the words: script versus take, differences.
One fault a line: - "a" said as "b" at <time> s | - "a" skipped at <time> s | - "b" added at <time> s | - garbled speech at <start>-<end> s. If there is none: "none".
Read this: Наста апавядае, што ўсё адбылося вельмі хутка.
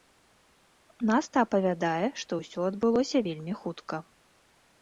none